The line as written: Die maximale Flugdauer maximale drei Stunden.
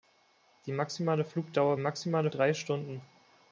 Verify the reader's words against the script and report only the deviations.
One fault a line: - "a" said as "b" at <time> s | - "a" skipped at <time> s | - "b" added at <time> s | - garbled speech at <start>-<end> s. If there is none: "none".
none